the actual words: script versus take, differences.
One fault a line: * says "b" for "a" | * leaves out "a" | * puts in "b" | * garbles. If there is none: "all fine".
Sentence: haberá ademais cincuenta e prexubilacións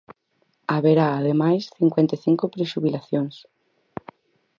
* puts in "cinco"